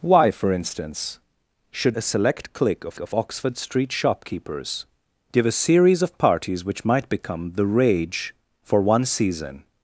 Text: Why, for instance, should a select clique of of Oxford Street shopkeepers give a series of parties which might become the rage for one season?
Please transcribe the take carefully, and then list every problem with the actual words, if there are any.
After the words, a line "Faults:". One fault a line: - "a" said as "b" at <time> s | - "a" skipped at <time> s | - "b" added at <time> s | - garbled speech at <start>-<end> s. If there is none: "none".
Why, for instance, should a select clique of of Oxford Street shopkeepers give a series of parties which might become the rage for one season?
Faults:
none